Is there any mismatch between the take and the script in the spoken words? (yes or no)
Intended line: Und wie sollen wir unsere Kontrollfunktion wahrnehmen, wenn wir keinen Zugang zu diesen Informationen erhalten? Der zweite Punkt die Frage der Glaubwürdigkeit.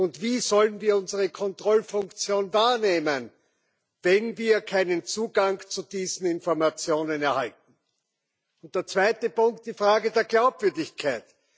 no